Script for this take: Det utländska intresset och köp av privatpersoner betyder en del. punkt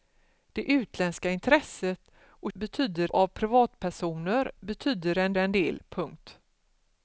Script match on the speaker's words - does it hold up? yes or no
no